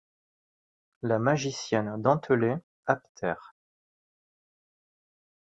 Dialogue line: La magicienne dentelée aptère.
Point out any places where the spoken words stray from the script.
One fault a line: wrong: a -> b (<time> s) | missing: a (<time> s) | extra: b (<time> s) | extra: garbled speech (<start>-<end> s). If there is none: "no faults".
no faults